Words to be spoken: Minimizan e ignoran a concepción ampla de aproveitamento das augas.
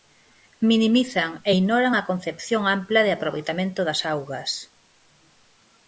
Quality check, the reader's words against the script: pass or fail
pass